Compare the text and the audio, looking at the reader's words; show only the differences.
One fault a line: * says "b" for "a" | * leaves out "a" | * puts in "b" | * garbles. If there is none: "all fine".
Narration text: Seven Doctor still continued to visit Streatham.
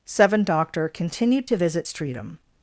* leaves out "still"